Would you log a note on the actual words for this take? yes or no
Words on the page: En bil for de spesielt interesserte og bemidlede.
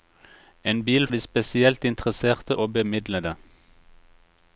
yes